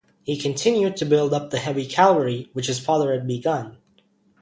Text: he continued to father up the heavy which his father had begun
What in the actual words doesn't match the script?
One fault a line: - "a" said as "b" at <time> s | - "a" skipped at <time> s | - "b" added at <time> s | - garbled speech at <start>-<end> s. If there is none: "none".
- "father" said as "build" at 1.1 s
- "cavalry" added at 1.9 s